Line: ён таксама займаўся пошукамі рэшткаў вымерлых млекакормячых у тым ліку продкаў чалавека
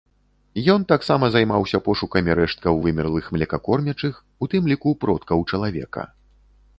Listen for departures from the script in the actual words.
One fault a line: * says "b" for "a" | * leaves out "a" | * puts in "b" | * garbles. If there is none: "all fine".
all fine